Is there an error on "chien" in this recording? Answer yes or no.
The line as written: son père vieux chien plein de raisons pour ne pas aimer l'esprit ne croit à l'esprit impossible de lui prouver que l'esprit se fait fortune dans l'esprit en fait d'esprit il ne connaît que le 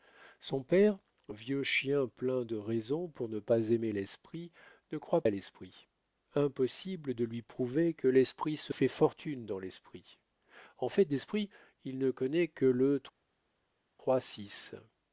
no